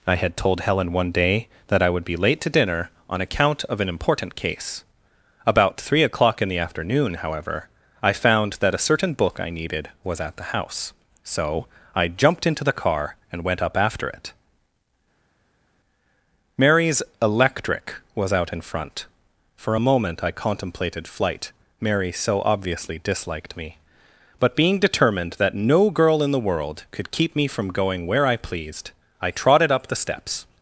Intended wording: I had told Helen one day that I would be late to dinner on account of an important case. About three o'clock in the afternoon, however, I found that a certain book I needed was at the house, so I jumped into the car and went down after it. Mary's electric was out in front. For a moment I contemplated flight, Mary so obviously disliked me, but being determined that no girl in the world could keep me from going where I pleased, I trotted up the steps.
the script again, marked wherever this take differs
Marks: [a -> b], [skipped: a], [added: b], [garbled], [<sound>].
I had told Helen one day that I would be late to dinner on account of an important case. About three o'clock in the afternoon, however, I found that a certain book I needed was at the house, so I jumped into the car and went [down -> up] after it. Mary's electric was out in front. For a moment I contemplated flight, Mary so obviously disliked me, but being determined that no girl in the world could keep me from going where I pleased, I trotted up the steps.